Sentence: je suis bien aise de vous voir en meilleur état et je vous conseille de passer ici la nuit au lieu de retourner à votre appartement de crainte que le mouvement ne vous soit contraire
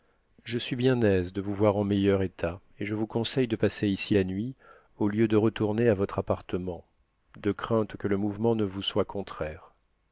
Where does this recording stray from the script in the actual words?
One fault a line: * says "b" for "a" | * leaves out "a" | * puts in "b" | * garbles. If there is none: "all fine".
all fine